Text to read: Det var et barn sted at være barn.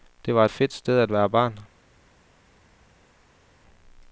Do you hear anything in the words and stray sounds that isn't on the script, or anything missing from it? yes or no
yes